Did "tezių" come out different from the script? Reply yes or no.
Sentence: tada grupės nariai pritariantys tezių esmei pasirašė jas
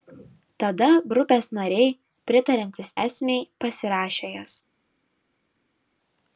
yes